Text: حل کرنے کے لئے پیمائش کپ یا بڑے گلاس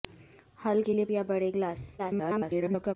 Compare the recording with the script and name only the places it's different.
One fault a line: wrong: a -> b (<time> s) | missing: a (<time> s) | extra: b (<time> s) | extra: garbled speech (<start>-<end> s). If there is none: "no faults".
missing: کرنے (0.8 s)
missing: پیمائش کپ (1.0 s)
extra: garbled speech (2.0-3.0 s)